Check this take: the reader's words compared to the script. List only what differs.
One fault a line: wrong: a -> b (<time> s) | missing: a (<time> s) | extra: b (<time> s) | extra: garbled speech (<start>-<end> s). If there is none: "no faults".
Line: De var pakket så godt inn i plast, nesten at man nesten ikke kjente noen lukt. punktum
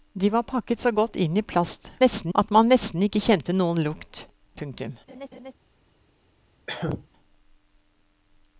no faults